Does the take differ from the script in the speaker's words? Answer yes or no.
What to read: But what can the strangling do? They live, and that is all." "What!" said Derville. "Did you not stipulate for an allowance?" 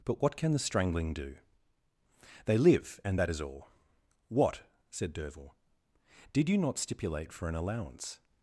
no